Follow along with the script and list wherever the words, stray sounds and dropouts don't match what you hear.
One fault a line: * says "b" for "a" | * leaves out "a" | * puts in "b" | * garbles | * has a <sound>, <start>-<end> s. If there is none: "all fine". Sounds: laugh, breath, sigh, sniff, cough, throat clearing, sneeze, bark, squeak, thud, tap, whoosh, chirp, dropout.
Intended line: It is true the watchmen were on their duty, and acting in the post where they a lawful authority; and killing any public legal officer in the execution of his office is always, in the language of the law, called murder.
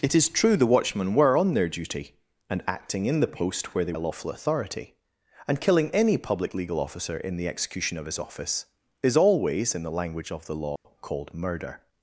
* has a dropout, 10.8-10.9 s